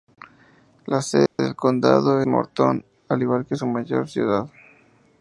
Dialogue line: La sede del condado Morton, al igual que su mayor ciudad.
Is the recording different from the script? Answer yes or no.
no